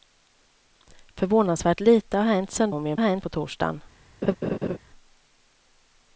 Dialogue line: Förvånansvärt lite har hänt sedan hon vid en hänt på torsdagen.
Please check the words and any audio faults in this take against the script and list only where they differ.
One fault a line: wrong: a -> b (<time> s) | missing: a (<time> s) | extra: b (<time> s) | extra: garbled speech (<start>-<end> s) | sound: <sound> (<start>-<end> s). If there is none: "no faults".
sound: laugh (4.2-4.8 s)